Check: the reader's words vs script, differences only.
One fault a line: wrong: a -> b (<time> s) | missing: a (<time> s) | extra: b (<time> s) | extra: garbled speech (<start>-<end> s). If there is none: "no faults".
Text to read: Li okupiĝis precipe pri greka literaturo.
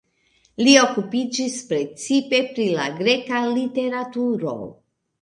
extra: la (2.8 s)